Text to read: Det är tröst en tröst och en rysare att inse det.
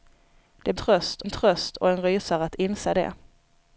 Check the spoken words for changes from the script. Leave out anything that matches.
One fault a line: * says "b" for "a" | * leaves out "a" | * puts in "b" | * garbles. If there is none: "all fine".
all fine